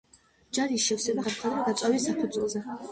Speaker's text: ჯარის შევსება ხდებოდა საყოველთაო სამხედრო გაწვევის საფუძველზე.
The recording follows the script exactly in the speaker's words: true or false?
false